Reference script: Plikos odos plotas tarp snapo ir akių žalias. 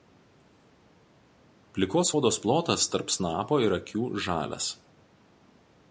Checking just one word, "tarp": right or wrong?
right